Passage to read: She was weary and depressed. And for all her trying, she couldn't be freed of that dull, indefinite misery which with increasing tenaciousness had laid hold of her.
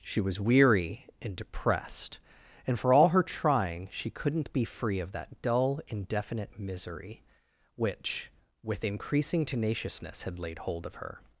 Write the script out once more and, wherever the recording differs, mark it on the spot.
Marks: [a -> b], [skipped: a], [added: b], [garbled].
She was weary and depressed. And for all her trying, she couldn't be [freed -> free] of that dull, indefinite misery which with increasing tenaciousness had laid hold of her.